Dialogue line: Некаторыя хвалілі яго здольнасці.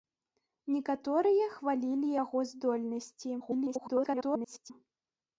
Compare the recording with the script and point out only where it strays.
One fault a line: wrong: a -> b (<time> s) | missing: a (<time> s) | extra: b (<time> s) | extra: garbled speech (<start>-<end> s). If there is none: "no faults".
extra: garbled speech (3.4-4.7 s)